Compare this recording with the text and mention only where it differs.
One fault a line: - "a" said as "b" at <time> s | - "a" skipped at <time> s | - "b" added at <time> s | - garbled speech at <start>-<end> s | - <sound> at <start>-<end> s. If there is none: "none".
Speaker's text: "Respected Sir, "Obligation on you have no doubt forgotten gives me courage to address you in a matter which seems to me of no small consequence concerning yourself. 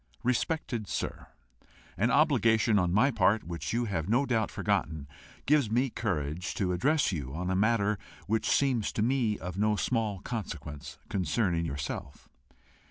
- "An" added at 1.9 s
- "my part which" added at 2.9 s
- "in" said as "on" at 7.3 s